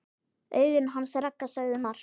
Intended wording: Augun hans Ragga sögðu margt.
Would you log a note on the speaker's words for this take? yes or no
no